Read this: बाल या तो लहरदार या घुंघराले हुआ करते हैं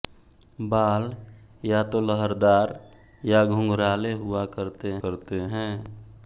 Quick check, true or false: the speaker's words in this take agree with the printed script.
false